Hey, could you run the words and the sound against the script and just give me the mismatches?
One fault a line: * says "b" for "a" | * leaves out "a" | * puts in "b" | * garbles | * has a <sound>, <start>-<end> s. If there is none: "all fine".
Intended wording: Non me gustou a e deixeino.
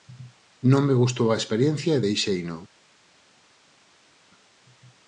* puts in "experiencia"